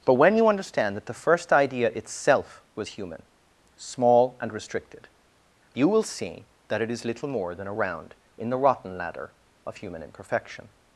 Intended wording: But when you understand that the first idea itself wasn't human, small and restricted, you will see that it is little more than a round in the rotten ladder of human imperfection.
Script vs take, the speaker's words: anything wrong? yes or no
yes